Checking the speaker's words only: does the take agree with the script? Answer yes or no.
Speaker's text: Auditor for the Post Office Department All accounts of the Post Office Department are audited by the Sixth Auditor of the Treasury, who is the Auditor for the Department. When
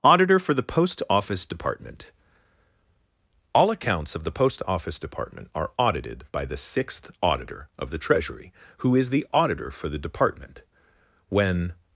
yes